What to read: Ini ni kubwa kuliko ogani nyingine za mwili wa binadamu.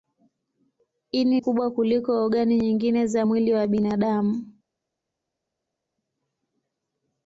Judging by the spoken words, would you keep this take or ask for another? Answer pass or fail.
fail